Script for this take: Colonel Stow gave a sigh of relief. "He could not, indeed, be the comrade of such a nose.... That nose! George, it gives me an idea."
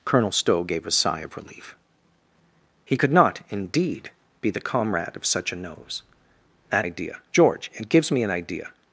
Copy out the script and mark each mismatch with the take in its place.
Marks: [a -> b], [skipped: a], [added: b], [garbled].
Colonel Stow gave a sigh of relief. "He could not, indeed, be the comrade of such a nose.... That [nose! -> idea] George, it gives me an idea."